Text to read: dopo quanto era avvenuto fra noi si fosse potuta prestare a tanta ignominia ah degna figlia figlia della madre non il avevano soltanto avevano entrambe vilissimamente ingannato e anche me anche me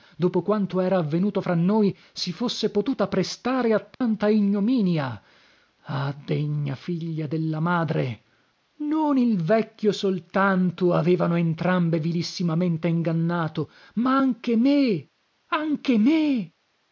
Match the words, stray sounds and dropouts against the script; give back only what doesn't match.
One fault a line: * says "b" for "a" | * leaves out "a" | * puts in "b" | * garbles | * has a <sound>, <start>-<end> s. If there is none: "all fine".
* has a dropout, 3.9-4.0 s
* leaves out "figlia"
* says "vecchio" for "avevano"
* says "ma" for "e"